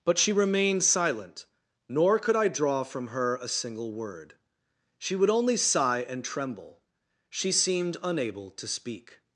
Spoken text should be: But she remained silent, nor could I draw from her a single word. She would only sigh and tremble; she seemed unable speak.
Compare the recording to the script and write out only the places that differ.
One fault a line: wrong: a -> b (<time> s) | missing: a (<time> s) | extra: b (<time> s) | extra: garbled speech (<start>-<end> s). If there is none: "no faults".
extra: to (8.5 s)